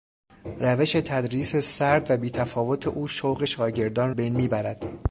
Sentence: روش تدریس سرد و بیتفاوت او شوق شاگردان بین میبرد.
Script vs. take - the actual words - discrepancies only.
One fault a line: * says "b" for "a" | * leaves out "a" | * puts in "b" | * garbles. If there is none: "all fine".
all fine